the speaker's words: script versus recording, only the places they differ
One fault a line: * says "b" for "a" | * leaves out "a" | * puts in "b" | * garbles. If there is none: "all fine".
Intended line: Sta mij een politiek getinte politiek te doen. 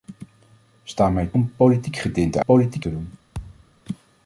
all fine